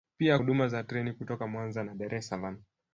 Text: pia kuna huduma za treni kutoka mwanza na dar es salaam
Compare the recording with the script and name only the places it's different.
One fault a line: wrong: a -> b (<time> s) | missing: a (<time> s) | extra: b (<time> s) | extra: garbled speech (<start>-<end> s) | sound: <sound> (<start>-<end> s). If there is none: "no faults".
missing: kuna (0.4 s)